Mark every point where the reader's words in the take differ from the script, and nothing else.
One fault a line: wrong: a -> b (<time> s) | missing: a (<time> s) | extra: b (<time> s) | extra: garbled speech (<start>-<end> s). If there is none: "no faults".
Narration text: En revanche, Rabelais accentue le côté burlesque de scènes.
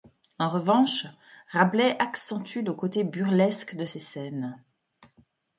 extra: ces (3.8 s)